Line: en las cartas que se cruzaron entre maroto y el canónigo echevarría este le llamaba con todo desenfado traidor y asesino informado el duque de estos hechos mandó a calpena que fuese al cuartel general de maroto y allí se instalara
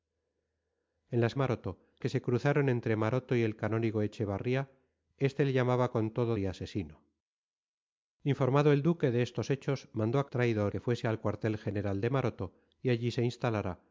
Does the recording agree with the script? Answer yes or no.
no